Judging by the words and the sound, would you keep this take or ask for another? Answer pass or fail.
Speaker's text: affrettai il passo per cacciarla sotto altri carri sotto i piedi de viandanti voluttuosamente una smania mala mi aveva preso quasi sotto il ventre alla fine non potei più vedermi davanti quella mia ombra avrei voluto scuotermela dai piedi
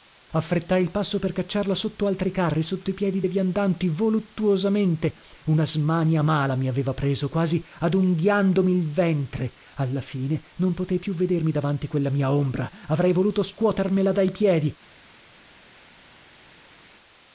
fail